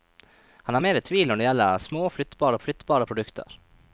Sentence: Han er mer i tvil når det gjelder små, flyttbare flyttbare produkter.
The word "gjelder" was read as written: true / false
true